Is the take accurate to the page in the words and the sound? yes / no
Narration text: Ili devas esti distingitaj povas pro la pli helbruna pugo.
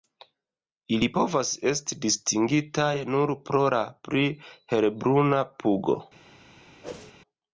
no